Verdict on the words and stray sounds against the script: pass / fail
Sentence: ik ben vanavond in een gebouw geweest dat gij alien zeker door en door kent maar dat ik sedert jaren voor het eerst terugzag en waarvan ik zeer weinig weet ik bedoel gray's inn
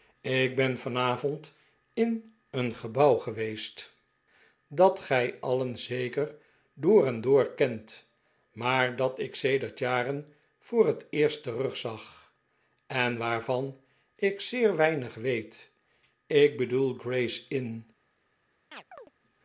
fail